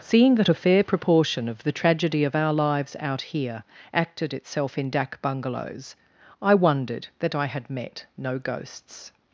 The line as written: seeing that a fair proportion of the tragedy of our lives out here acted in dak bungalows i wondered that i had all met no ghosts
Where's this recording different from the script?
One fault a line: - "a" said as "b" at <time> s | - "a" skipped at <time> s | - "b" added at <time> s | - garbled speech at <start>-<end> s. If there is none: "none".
- "itself" added at 4.3 s
- "all" skipped at 7.7 s